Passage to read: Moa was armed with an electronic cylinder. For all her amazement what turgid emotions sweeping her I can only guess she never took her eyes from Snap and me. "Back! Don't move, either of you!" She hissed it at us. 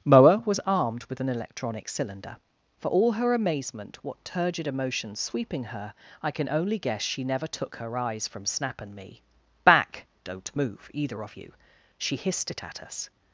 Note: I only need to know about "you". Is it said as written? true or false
true